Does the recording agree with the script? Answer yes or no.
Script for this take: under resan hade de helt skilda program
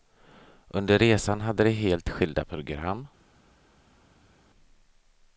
yes